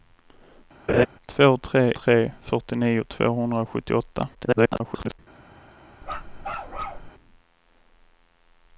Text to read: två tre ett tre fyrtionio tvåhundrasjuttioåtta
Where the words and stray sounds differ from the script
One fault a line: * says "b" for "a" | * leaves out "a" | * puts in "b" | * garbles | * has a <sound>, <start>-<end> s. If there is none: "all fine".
* has a laugh, 0.9-1.1 s
* leaves out "ett"
* garbles
* has a bark, 6.0-7.1 s